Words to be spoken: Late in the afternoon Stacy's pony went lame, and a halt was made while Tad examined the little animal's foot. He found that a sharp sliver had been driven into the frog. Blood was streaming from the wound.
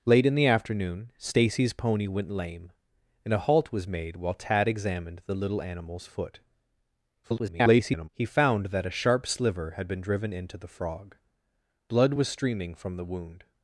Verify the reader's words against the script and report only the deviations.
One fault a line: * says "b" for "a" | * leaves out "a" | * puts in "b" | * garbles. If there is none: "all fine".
* garbles